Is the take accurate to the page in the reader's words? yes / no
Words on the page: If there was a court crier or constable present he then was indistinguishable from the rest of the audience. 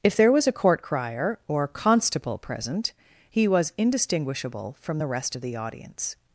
no